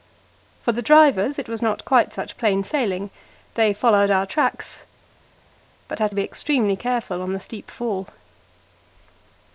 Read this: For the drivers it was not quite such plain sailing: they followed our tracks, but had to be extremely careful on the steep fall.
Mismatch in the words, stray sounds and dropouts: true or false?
false